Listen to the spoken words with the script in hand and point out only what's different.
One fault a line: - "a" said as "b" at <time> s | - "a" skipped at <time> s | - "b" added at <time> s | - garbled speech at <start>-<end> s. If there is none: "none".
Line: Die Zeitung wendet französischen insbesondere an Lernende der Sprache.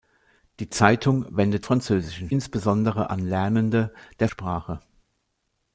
none